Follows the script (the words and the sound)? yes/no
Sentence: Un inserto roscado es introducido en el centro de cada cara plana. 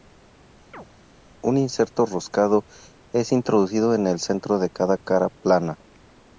no